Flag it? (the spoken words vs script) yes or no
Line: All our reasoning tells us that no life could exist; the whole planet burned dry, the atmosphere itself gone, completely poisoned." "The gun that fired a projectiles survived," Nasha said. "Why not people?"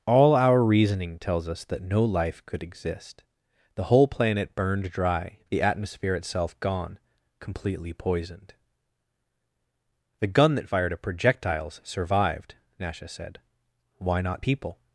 no